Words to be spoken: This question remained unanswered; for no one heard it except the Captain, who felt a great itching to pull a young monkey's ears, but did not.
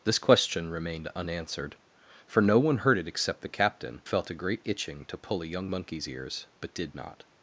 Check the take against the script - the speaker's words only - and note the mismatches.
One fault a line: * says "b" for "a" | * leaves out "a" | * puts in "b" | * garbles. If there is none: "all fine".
* leaves out "who"